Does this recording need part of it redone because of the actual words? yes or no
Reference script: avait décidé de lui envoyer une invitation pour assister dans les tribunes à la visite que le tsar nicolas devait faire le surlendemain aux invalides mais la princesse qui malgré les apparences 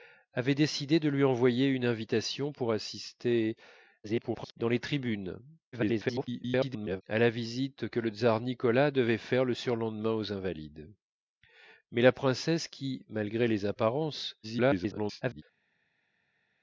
yes